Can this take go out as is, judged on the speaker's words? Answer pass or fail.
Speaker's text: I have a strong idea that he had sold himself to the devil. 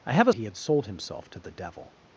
fail